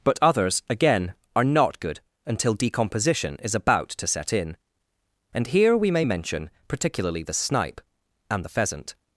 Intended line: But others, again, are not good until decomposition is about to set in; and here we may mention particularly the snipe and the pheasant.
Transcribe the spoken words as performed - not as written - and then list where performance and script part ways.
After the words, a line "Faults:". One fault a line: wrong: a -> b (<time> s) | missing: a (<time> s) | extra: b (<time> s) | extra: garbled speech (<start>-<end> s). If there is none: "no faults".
But others, again, are not good until decomposition is about to set in; and here we may mention particularly the snipe and the pheasant.
Faults:
no faults